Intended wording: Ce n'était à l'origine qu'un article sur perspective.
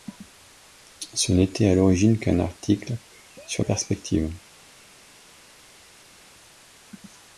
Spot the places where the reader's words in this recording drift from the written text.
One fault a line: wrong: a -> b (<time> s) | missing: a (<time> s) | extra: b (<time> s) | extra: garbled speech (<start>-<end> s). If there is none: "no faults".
no faults